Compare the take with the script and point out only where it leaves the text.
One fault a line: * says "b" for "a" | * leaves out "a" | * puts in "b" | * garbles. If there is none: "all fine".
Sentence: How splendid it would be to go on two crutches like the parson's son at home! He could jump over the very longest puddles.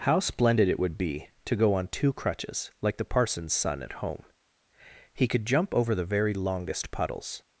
all fine